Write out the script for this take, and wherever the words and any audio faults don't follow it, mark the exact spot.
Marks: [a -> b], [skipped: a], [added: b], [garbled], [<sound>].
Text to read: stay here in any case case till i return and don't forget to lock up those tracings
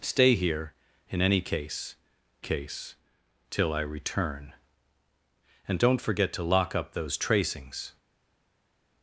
stay here in any case case till i return and don't forget to lock up those tracings